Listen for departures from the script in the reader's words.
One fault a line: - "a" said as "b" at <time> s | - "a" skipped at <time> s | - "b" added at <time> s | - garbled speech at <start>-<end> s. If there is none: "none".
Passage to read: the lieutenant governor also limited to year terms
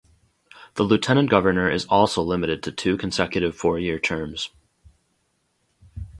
- "is" added at 1.7 s
- "two consecutive four" added at 2.7 s